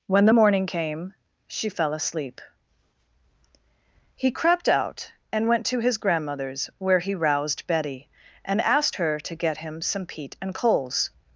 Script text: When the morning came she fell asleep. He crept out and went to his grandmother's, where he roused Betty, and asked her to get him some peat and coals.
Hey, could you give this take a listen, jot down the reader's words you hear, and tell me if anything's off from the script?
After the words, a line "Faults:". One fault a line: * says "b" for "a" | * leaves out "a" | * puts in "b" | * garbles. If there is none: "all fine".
When the morning came she fell asleep. He crept out and went to his grandmother's, where he roused Betty, and asked her to get him some peat and coals.
Faults:
all fine